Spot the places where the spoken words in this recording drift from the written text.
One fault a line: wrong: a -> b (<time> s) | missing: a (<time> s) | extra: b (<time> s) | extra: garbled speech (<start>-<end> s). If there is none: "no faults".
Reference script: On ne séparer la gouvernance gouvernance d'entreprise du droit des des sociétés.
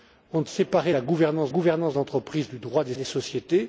no faults